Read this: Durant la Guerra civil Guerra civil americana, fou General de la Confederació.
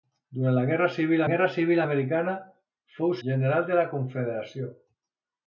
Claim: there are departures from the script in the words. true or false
false